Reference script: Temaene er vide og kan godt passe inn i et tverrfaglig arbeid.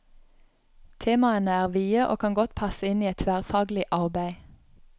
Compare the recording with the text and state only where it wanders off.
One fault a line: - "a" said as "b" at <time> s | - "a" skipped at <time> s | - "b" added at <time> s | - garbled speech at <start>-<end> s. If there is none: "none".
none